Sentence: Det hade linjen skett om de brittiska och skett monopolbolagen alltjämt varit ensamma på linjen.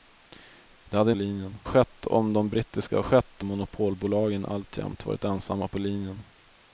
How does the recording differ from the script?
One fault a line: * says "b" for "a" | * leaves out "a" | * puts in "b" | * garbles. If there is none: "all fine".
all fine